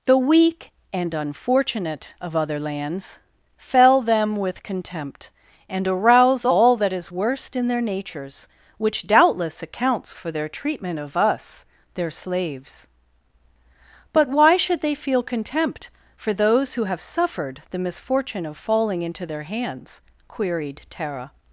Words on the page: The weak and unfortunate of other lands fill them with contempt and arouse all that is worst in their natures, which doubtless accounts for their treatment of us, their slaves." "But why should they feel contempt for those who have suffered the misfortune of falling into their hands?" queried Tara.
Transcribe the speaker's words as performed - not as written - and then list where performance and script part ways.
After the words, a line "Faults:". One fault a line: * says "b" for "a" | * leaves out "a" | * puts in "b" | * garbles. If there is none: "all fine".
The weak and unfortunate of other lands fell them with contempt and arouse all that is worst in their natures, which doubtless accounts for their treatment of us, their slaves." "But why should they feel contempt for those who have suffered the misfortune of falling into their hands?" queried Tara.
Faults:
* says "fell" for "fill"